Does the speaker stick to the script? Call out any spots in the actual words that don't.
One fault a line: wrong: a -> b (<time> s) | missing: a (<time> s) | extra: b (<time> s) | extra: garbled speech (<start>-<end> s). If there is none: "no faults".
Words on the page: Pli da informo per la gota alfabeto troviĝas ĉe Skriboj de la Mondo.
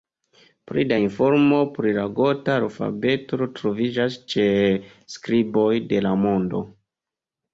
wrong: per -> pri (1.8 s)